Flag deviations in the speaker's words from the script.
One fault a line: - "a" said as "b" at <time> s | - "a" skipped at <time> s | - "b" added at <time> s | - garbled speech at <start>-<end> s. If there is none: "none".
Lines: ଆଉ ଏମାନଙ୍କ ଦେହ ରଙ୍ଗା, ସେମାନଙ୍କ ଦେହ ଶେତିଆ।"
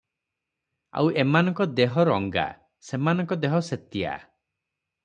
none